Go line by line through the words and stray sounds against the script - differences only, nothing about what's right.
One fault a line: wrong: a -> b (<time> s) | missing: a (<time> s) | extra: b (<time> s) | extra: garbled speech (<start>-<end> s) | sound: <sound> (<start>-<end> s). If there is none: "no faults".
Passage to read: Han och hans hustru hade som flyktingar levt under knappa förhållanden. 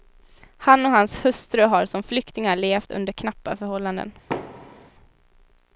wrong: hade -> har (1.6 s)
sound: thud (4.3-4.9 s)